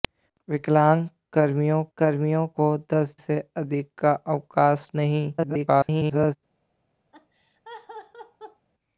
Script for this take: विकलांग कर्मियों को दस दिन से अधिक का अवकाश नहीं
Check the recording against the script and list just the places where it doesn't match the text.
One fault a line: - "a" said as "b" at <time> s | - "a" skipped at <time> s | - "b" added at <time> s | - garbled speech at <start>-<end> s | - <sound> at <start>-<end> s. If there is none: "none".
- "कर्मियों" added at 2.0 s
- "दिन" skipped at 3.1 s
- garbled speech at 5.4-6.4 s
- laugh at 7.1-8.7 s